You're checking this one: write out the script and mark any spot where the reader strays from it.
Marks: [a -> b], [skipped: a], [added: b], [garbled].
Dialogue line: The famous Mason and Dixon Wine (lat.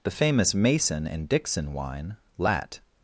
The famous Mason and Dixon Wine (lat.